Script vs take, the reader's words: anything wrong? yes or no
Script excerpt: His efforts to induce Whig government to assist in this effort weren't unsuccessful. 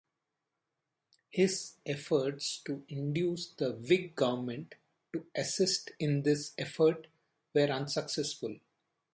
yes